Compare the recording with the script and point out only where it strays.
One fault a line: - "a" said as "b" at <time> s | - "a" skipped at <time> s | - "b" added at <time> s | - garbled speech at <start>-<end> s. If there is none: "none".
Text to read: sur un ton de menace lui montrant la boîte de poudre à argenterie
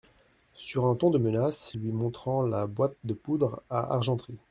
none